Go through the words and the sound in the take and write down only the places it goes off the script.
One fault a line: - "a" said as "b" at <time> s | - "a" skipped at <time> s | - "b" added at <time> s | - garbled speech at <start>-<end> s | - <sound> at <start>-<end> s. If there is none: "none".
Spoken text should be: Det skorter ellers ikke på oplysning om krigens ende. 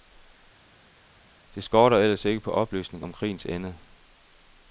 none